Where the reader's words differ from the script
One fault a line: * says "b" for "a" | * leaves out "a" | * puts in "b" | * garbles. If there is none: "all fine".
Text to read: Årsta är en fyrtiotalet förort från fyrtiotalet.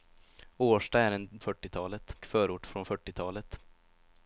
all fine